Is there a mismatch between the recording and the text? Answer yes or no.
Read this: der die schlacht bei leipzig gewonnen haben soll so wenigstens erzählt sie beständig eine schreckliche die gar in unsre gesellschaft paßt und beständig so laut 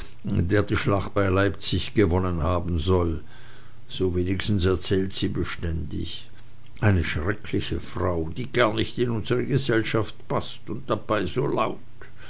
yes